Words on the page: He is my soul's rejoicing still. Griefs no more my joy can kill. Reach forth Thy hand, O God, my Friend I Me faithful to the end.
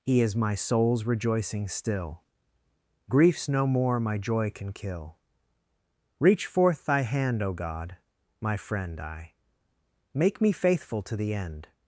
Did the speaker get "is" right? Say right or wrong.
right